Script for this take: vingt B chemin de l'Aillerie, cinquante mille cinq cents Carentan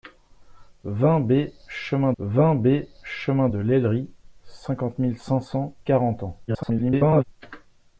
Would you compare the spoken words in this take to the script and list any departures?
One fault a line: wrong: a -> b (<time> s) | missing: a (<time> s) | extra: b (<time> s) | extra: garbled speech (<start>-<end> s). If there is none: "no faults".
extra: vingt B chemin (2.2 s)
extra: garbled speech (6.5-7.2 s)